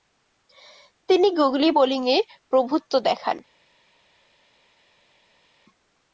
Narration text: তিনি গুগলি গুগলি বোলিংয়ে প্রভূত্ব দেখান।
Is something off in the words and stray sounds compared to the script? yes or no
yes